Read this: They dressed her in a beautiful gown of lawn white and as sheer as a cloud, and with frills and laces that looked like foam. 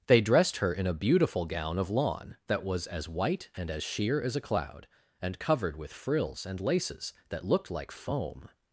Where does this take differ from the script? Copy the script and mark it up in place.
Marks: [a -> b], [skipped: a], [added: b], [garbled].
They dressed her in a beautiful gown of lawn [added: that was as] white and as sheer as a cloud, and [added: covered] with frills and laces that looked like foam.